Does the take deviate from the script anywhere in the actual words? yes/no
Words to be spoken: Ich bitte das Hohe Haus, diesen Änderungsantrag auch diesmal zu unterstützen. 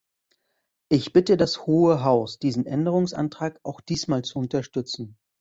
no